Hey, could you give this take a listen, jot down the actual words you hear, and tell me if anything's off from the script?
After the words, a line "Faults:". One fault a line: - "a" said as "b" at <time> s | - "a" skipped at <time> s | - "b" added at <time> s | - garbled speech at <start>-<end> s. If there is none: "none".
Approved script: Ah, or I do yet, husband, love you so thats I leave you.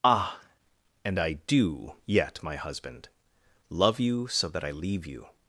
Ah, and I do yet, my husband, love you so that I leave you.
Faults:
- "or" said as "and" at 1.1 s
- "my" added at 2.4 s
- "thats" said as "that" at 4.5 s